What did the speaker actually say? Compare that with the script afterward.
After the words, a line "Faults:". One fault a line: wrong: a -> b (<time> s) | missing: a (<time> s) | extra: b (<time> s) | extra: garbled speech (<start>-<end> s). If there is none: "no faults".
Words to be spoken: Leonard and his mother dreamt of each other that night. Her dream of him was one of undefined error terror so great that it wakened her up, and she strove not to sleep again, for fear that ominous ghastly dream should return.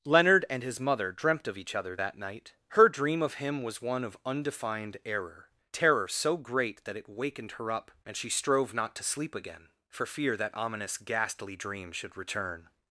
Leonard and his mother dreamt of each other that night. Her dream of him was one of undefined error terror so great that it wakened her up, and she strove not to sleep again, for fear that ominous ghastly dream should return.
Faults:
no faults